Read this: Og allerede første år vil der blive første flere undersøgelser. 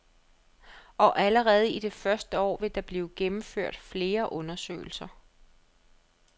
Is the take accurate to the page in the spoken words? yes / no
no